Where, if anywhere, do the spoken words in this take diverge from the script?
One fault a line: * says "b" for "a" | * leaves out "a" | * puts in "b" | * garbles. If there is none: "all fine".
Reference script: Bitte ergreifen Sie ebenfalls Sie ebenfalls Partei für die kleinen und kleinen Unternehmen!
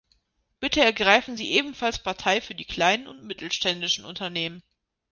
* leaves out "Sie ebenfalls"
* says "mittelständischen" for "kleinen"